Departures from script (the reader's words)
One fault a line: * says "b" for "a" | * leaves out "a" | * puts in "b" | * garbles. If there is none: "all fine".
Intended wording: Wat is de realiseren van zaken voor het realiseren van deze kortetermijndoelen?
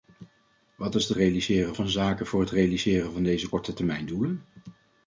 all fine